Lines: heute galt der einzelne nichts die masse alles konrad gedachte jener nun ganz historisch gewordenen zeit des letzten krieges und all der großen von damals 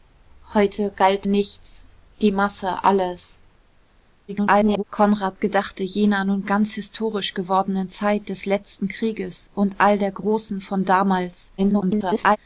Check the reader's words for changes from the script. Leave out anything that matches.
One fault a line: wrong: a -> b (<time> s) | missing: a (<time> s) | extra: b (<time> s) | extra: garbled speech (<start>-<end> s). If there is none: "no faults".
missing: der einzelne (1.2 s)
extra: garbled speech (4.3-4.8 s)
extra: garbled speech (11.6-12.4 s)